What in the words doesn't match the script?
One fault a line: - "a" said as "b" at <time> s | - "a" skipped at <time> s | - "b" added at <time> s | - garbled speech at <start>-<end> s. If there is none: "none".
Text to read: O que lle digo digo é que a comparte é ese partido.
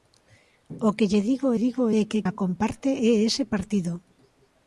none